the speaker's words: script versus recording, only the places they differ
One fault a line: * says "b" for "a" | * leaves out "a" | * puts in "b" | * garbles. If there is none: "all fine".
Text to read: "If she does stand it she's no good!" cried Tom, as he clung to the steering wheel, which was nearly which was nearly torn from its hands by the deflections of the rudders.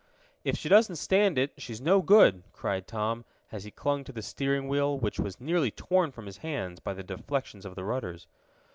* says "doesn't" for "does"
* leaves out "which was nearly"
* says "his" for "its"